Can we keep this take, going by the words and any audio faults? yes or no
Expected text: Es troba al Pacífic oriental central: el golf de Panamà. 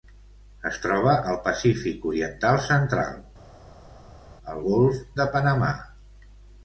yes